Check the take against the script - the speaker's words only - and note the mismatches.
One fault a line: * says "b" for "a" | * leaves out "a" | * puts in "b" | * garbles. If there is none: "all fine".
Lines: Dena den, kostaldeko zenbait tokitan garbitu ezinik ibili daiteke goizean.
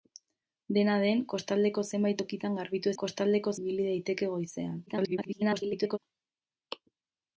* says "kostaldeko" for "ezinik"
* garbles